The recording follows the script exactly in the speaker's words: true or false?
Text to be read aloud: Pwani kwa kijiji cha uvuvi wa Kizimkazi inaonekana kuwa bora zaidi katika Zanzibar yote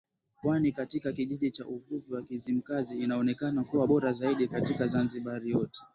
false